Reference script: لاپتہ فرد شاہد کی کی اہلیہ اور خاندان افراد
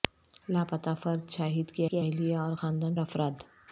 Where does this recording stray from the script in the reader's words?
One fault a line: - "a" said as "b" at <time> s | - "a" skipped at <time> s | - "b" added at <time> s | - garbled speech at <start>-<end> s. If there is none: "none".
none